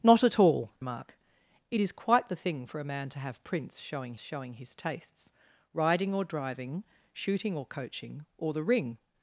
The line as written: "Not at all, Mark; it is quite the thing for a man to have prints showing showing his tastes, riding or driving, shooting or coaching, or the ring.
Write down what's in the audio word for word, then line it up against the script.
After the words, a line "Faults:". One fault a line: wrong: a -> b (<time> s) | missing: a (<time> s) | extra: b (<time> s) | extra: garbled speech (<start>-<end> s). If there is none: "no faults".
"Not at all, Mark; it is quite the thing for a man to have prints showing showing his tastes, riding or driving, shooting or coaching, or the ring.
Faults:
no faults